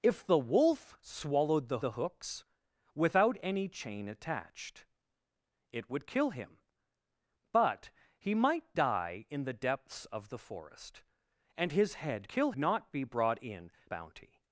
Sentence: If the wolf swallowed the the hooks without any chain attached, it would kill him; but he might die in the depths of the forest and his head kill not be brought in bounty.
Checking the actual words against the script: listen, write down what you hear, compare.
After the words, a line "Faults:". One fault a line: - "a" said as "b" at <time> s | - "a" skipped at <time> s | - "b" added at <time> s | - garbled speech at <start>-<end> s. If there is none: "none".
If the wolf swallowed the the hooks without any chain attached, it would kill him; but he might die in the depths of the forest and his head kill not be brought in bounty.
Faults:
none